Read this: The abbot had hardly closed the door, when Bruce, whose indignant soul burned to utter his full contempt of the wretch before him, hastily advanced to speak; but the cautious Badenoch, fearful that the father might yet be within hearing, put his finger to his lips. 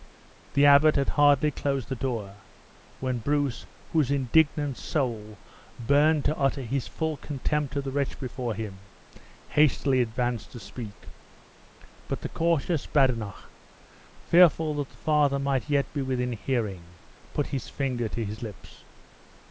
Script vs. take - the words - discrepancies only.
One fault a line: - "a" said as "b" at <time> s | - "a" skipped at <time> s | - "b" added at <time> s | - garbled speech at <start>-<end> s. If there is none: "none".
none